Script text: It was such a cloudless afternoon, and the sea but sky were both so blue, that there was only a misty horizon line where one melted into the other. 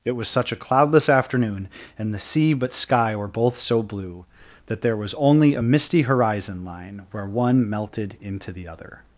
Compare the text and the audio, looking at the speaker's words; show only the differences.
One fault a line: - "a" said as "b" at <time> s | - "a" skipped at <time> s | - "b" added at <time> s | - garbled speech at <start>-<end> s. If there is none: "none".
none